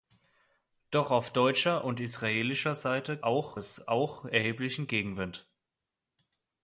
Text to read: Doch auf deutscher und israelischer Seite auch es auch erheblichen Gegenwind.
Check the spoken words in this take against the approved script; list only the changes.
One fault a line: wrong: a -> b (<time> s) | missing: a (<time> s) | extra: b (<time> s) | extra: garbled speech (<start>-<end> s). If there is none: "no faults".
no faults